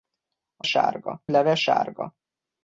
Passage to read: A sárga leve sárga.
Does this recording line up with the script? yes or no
yes